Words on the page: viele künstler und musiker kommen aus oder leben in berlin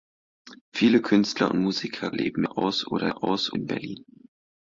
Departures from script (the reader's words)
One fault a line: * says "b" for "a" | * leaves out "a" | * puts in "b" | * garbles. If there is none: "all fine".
* says "leben" for "kommen"
* says "aus" for "leben"